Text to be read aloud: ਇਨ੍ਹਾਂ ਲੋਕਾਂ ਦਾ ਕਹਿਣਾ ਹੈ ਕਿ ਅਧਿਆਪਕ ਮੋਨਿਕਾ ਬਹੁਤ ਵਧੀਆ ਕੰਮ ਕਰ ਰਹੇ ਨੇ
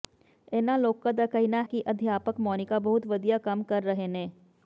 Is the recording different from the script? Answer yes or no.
yes